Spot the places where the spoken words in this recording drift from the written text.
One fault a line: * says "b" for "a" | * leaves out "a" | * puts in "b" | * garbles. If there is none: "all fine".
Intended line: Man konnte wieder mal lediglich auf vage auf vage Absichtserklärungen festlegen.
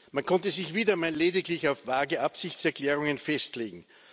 * puts in "sich"
* leaves out "auf vage"